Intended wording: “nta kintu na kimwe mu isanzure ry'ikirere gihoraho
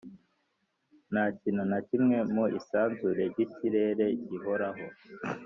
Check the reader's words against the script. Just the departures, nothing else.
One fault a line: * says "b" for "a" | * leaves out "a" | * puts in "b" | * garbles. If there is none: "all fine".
all fine